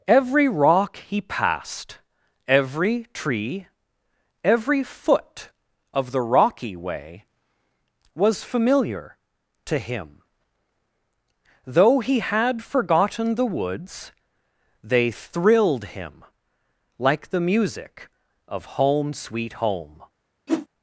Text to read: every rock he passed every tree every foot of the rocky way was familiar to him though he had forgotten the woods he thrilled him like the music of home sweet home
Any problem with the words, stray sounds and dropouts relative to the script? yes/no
yes